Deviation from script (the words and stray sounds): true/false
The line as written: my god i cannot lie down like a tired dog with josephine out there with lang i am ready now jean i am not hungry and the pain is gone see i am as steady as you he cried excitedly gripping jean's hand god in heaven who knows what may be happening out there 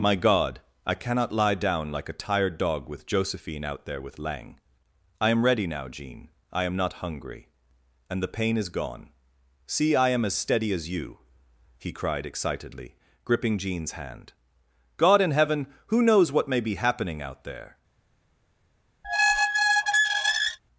true